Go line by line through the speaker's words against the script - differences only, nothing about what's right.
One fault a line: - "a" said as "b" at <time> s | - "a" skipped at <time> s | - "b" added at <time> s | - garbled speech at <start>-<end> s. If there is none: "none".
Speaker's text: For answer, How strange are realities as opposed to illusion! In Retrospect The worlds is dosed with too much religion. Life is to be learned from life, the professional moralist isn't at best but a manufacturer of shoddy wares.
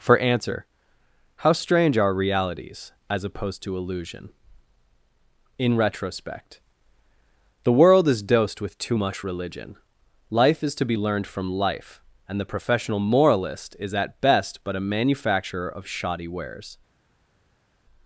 - "worlds" said as "world" at 7.7 s
- "and" added at 12.3 s
- "isn't" said as "is" at 13.8 s